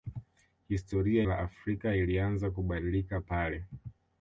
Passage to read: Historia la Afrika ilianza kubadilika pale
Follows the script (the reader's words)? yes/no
yes